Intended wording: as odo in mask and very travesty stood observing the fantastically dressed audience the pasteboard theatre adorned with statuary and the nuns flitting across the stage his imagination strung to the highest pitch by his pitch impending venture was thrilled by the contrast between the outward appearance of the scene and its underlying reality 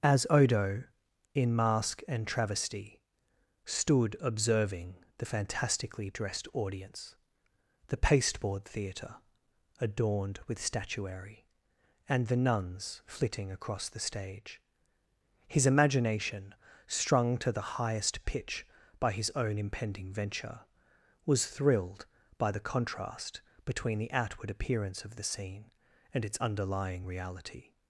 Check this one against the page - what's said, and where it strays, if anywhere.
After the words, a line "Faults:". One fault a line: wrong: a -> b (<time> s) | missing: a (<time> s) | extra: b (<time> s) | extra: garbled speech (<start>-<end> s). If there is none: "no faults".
as odo in mask and travesty stood observing the fantastically dressed audience the pasteboard theatre adorned with statuary and the nuns flitting across the stage his imagination strung to the highest pitch by his own impending venture was thrilled by the contrast between the outward appearance of the scene and its underlying reality
Faults:
missing: very (2.2 s)
wrong: pitch -> own (19.3 s)